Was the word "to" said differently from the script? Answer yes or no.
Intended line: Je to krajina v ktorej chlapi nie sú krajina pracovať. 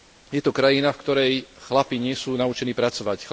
no